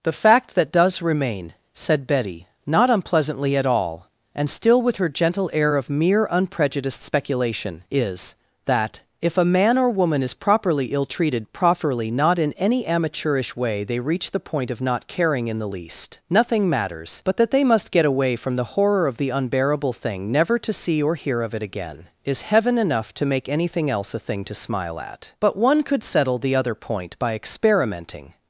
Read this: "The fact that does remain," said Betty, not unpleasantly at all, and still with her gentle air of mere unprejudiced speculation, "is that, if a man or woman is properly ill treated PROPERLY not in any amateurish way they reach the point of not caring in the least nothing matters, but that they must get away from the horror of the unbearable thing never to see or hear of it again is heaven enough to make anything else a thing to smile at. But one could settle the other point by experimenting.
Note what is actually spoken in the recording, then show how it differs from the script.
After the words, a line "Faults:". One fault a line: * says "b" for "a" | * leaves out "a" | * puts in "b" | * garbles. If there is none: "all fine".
"The fact that does remain," said Betty, not unpleasantly at all, and still with her gentle air of mere unprejudiced speculation, "is that, if a man or woman is properly ill treated PROPERLY not in any amateurish way they reach the point of not caring in the least nothing matters, but that they must get away from the horror of the unbearable thing never to see or hear of it again is heaven enough to make anything else a thing to smile at. But one could settle the other point by experimenting.
Faults:
all fine